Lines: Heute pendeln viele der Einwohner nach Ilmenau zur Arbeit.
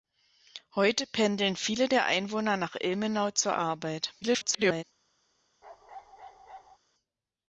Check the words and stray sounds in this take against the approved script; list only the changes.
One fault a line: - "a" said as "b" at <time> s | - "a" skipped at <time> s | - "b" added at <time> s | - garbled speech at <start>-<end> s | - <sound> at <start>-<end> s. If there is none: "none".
- garbled speech at 4.2-4.8 s
- bark at 5.6-6.8 s